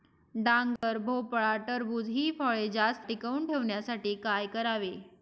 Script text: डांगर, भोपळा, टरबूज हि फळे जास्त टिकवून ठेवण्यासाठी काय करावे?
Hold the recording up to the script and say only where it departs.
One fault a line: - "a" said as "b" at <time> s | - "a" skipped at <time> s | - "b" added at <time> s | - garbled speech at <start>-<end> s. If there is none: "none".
none